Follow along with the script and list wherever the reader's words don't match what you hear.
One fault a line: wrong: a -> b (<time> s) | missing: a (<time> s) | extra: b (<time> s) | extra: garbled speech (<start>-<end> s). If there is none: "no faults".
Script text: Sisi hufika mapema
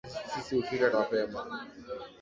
no faults